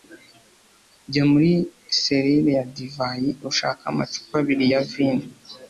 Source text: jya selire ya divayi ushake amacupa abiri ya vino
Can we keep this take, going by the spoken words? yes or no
no